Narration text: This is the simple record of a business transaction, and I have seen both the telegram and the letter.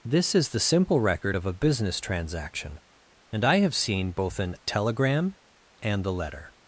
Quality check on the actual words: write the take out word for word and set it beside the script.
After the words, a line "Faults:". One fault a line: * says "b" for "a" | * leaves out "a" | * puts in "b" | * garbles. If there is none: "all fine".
This is the simple record of a business transaction, and I have seen both an telegram and the letter.
Faults:
* says "an" for "the"